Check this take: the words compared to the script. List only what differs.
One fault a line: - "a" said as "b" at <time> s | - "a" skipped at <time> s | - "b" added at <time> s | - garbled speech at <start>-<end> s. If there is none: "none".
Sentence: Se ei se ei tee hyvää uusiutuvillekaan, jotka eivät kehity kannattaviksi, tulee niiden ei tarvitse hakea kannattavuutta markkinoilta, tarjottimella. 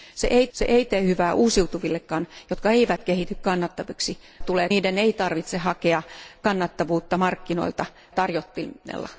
none